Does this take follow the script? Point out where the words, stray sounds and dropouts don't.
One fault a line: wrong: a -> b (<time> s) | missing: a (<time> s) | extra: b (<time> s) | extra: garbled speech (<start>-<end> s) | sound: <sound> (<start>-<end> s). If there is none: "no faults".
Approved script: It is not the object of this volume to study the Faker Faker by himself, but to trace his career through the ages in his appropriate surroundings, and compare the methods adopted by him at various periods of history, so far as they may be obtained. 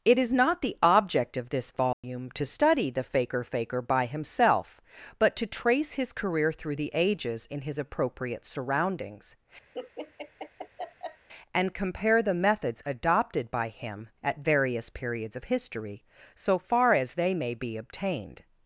sound: dropout (1.9-2.0 s)
sound: laugh (9.7-11.3 s)